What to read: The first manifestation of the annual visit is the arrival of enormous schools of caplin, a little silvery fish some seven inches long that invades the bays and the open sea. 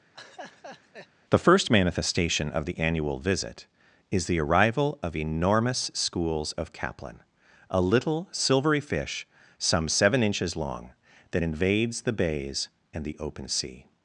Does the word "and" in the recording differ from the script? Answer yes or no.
no